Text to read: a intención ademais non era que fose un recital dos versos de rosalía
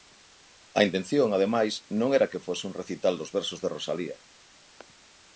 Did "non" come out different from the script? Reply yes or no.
no